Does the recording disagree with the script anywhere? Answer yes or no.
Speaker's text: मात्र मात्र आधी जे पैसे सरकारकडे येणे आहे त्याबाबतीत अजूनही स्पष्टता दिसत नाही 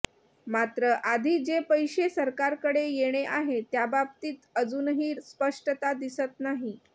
yes